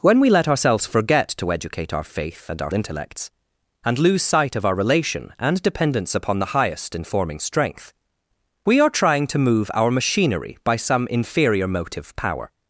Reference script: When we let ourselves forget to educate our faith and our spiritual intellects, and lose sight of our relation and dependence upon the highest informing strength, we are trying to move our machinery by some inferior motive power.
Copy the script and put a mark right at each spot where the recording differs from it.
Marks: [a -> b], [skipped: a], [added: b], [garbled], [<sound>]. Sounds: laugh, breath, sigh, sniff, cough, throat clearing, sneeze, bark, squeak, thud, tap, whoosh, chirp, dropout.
When we let ourselves forget to educate our faith and our [skipped: spiritual] intellects, and lose sight of our relation and dependence upon the highest informing strength, we are trying to move our machinery by some inferior motive power.